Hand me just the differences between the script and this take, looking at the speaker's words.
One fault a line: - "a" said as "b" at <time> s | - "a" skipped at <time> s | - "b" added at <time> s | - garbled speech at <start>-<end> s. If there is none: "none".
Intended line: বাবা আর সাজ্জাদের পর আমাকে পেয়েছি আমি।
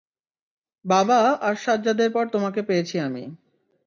- "আমাকে" said as "তোমাকে" at 2.3 s